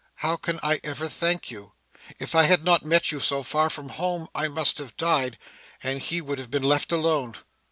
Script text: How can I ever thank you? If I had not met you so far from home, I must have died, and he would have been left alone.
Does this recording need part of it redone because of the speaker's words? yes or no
no